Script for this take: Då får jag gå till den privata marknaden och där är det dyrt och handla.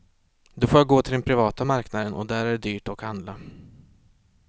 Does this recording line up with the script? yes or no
yes